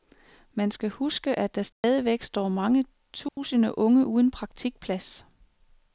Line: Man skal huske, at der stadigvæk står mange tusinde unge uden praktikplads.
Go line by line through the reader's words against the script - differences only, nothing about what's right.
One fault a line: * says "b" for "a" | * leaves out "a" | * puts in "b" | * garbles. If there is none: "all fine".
all fine